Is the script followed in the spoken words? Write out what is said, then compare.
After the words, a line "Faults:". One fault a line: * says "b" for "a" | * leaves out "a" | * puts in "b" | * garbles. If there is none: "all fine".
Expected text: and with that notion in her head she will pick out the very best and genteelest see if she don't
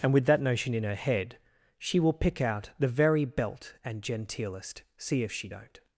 and with that notion in her head she will pick out the very belt and genteelest see if she don't
Faults:
* says "belt" for "best"